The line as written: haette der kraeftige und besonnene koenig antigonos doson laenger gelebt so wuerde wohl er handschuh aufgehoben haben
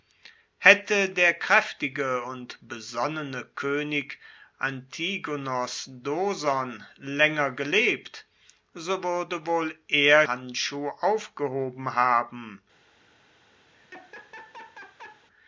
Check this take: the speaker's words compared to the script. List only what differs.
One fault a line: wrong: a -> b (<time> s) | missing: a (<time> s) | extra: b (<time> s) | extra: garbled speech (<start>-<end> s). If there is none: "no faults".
no faults